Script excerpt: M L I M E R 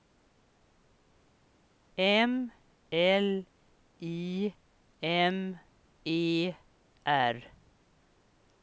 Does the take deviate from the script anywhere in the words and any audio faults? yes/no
no